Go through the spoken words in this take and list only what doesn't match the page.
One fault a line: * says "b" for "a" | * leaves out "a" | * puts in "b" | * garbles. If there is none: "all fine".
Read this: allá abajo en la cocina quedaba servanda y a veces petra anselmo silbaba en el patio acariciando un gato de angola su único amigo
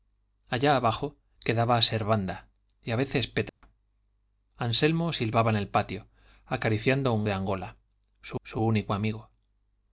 * leaves out "en la cocina"
* leaves out "gato"
* puts in "su"